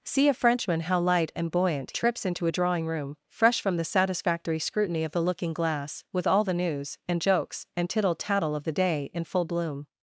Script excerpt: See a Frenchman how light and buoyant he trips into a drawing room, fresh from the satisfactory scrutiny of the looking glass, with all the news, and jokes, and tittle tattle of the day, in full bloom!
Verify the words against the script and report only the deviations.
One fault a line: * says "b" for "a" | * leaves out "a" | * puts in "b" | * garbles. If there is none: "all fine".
* leaves out "he"